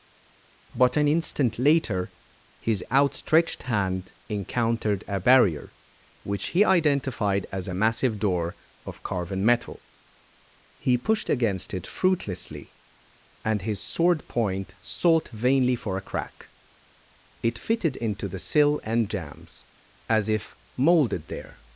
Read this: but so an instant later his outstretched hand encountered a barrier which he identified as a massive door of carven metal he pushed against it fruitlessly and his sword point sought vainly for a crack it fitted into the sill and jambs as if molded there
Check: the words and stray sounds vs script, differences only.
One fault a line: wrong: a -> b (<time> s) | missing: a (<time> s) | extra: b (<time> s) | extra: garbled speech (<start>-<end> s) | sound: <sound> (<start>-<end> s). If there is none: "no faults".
missing: so (1.0 s)